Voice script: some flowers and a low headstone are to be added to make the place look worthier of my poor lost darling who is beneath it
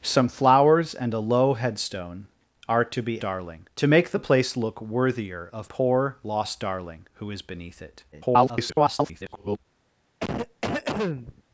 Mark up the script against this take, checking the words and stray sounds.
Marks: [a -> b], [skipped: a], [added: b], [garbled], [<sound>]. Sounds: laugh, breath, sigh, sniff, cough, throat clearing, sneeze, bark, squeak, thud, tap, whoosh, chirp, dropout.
some flowers and a low headstone are to be [added -> darling] to make the place look worthier of [skipped: my] poor lost darling who is beneath it [garbled] [cough]